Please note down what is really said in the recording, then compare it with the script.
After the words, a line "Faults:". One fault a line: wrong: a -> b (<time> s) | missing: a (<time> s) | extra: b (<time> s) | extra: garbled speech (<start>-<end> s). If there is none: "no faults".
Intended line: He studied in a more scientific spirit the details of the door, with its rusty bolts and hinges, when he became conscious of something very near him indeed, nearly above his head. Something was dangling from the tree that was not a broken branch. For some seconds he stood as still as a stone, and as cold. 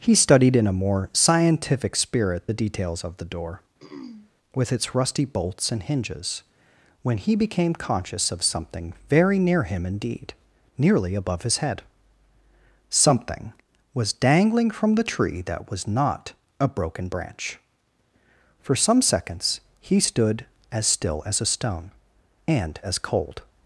He studied in a more scientific spirit the details of the door, with its rusty bolts and hinges, when he became conscious of something very near him indeed, nearly above his head. Something was dangling from the tree that was not a broken branch. For some seconds he stood as still as a stone, and as cold.
Faults:
no faults